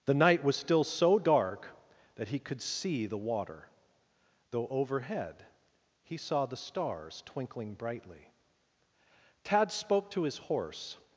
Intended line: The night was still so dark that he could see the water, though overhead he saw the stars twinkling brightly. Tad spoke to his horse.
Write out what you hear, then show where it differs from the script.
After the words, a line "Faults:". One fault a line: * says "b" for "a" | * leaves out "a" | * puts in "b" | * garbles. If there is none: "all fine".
The night was still so dark that he could see the water, though overhead he saw the stars twinkling brightly. Tad spoke to his horse.
Faults:
all fine